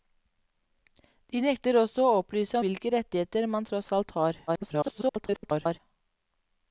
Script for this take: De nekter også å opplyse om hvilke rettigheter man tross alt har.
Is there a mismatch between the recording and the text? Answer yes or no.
yes